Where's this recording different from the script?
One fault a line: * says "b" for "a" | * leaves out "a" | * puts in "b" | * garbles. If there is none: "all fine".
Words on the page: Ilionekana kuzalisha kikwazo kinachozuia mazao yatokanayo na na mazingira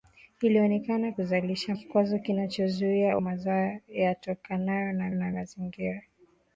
all fine